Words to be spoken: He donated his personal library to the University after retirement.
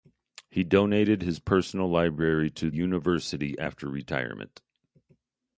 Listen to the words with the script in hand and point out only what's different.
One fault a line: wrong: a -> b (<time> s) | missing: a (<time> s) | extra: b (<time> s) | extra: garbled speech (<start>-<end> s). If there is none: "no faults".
missing: the (2.7 s)